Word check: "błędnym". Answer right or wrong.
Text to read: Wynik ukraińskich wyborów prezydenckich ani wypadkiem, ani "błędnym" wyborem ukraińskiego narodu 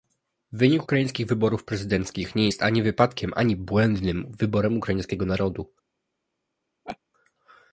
right